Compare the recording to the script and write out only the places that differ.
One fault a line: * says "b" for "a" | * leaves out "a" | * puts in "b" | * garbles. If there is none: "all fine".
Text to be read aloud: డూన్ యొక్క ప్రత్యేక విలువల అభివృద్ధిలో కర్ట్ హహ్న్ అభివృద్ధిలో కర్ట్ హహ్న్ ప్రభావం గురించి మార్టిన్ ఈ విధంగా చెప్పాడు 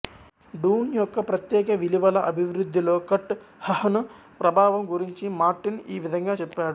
* leaves out "అభివృద్ధిలో కర్ట్ హహ్న్"